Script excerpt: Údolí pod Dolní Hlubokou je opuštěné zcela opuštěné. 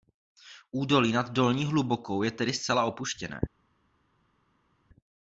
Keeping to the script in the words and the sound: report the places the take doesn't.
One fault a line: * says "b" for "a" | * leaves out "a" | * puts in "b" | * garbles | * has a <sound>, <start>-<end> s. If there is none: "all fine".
* says "nad" for "pod"
* says "tedy" for "opuštěné"